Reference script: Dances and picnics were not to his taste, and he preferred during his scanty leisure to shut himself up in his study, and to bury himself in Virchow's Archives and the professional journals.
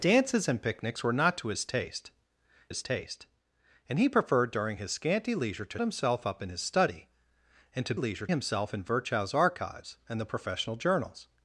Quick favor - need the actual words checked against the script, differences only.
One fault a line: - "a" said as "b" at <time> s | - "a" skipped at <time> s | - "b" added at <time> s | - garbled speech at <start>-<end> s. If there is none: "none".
- "his taste" added at 2.7 s
- "shut" skipped at 5.8 s
- "bury" said as "leisure" at 7.9 s